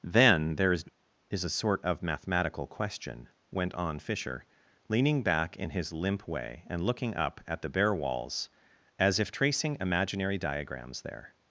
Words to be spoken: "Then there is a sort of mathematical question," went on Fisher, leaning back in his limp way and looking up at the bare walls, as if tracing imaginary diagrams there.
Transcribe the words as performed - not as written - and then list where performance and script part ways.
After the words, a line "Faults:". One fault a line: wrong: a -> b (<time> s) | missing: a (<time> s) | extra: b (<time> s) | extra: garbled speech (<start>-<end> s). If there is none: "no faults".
"Then there is is a sort of mathematical question," went on Fisher, leaning back in his limp way and looking up at the bare walls, as if tracing imaginary diagrams there.
Faults:
extra: is (1.3 s)